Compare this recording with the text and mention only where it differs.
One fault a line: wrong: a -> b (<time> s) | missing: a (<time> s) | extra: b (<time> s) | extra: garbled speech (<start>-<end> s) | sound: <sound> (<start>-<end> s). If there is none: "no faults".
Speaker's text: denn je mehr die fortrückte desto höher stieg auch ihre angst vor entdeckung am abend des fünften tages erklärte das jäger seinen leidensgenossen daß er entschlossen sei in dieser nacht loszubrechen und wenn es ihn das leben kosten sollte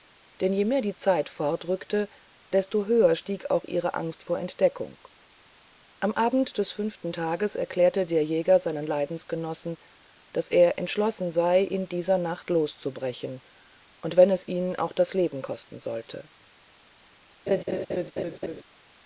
extra: zeit (0.9 s)
wrong: das -> der (8.0 s)
extra: auch (14.8 s)
sound: laugh (17.5-18.6 s)